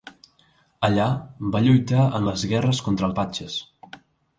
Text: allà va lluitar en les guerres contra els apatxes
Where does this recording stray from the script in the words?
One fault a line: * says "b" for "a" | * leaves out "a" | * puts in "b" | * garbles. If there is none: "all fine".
* leaves out "els"